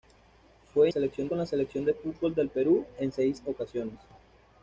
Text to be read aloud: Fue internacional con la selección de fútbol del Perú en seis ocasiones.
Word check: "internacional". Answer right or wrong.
wrong